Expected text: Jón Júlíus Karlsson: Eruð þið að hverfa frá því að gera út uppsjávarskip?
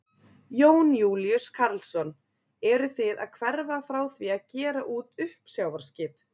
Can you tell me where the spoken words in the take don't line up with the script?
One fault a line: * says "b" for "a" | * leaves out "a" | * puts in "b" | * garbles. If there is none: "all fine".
all fine